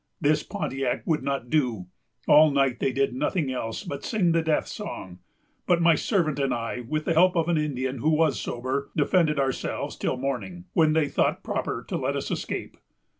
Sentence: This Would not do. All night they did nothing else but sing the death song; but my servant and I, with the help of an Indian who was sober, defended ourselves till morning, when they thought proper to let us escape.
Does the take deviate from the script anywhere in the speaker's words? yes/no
yes